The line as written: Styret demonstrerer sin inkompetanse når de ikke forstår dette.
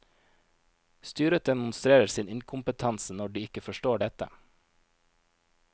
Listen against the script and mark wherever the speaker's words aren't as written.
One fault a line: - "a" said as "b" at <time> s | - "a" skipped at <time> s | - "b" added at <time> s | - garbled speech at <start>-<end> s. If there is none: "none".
none